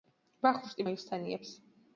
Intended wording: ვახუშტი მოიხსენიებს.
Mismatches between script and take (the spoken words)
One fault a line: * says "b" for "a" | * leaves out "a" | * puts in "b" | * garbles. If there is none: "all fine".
all fine